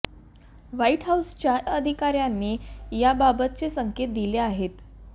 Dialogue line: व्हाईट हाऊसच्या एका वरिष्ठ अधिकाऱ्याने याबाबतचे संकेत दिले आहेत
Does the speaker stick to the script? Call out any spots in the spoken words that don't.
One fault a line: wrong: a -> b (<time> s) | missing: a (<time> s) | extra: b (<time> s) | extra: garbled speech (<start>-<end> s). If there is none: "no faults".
missing: एका वरिष्ठ (1.6 s)